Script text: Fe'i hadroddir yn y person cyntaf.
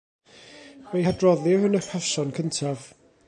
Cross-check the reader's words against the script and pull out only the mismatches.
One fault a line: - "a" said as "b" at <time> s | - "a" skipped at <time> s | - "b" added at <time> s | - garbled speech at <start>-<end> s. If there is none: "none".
none